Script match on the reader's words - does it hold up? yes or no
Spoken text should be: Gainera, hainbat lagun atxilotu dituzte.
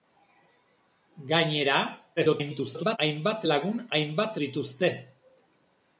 no